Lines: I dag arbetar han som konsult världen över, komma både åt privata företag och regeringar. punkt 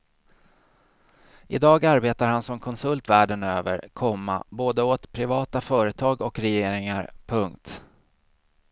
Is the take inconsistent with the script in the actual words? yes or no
no